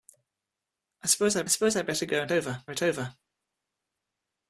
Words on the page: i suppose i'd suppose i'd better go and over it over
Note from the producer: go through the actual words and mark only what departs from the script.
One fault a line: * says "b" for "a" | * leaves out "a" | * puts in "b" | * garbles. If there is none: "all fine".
all fine